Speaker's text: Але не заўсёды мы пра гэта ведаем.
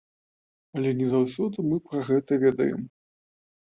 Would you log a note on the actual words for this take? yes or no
no